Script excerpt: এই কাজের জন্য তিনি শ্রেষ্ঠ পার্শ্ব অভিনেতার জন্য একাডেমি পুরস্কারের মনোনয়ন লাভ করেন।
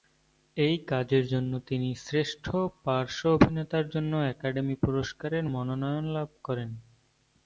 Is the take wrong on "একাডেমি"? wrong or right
right